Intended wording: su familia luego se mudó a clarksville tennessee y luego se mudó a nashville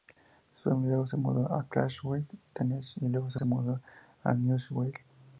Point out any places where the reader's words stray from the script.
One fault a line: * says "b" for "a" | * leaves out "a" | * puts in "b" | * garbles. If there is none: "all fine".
* puts in "se"